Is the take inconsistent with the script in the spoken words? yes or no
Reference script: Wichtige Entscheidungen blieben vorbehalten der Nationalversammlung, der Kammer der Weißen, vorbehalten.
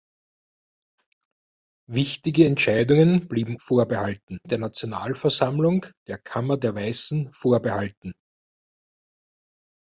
no